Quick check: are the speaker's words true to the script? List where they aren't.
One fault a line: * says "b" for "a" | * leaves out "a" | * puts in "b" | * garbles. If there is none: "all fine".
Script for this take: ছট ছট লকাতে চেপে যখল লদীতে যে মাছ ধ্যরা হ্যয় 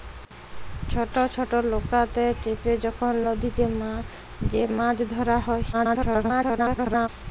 * garbles